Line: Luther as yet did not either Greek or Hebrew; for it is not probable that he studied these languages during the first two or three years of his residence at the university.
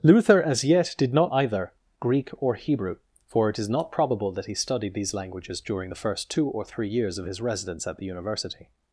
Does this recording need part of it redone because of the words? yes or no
no